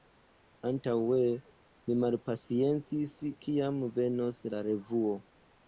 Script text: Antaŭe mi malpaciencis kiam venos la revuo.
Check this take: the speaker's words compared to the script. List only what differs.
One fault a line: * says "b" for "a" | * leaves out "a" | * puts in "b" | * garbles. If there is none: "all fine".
all fine